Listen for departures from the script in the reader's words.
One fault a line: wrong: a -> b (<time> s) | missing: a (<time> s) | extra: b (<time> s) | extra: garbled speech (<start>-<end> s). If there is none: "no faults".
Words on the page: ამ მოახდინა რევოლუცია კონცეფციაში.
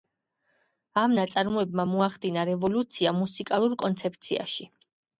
extra: ნაწარმოებმა (1.2 s)
extra: მუსიკალურ (3.2 s)